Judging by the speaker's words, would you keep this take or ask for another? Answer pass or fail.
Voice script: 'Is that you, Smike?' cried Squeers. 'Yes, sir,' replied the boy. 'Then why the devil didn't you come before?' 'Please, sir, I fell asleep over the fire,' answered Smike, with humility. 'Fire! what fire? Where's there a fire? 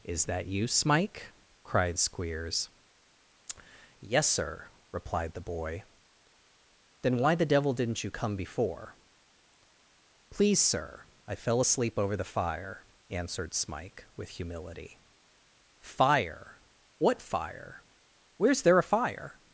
pass